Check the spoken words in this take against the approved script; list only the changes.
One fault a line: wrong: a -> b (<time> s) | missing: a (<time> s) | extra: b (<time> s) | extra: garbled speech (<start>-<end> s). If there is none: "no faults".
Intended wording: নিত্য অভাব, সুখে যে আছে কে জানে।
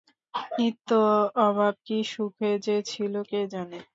extra: কী (1.8 s)
wrong: আছে -> ছিল (2.8 s)